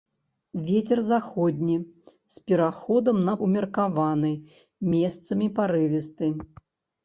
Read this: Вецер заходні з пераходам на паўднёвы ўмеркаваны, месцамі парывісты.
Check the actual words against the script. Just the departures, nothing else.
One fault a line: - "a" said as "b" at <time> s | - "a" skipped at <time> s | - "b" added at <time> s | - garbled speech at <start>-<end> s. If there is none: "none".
- "паўднёвы" skipped at 3.4 s